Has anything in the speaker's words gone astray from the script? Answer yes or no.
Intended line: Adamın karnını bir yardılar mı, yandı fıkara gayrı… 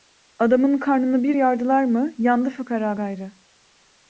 no